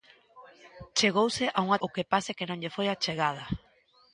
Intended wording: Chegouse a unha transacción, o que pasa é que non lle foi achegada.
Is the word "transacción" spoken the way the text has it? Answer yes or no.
no